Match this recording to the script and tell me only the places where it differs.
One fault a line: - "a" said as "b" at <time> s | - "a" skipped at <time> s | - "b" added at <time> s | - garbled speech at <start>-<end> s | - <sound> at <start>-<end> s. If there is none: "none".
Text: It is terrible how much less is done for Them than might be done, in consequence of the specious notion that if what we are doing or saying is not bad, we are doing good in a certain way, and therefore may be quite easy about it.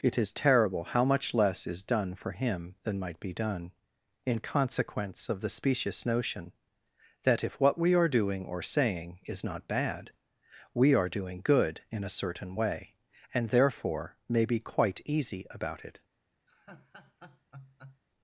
- "Them" said as "Him" at 2.3 s
- laugh at 16.5-18.0 s